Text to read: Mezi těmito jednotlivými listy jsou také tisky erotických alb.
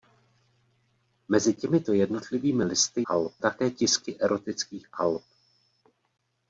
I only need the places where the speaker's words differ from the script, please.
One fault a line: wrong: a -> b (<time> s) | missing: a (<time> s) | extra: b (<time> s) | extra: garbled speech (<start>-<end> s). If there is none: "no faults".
wrong: jsou -> alb (3.0 s)